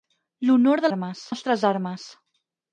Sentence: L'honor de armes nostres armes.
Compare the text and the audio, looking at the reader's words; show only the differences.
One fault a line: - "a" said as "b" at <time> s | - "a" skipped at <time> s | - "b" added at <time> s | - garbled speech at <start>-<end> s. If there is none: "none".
none